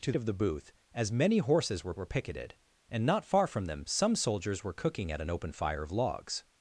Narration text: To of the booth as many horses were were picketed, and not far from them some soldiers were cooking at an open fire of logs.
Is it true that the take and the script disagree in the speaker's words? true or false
false